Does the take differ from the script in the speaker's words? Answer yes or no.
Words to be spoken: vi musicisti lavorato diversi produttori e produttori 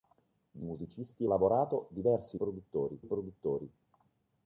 no